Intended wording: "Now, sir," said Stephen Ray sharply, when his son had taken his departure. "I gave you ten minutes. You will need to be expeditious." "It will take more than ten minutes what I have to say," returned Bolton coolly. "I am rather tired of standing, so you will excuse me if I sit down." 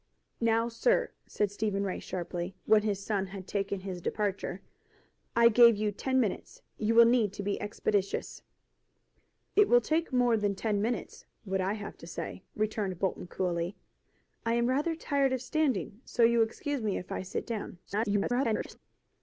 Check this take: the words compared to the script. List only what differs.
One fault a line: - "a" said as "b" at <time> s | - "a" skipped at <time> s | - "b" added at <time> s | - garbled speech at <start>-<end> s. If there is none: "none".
- garbled speech at 17.9-18.8 s